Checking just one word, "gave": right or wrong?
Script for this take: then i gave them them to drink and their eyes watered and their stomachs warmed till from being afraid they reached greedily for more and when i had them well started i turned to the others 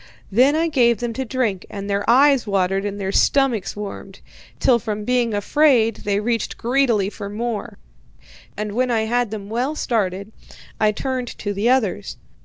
right